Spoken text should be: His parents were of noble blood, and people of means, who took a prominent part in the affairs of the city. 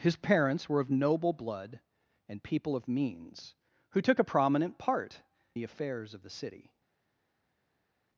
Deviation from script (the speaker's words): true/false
true